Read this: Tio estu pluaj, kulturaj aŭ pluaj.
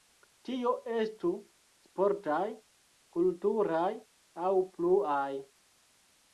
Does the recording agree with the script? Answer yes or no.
no